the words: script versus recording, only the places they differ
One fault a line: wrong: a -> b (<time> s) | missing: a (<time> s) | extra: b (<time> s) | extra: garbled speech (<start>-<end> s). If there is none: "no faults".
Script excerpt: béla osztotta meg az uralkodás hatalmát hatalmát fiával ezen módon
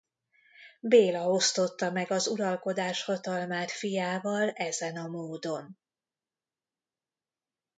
missing: hatalmát (3.7 s)
extra: a (5.0 s)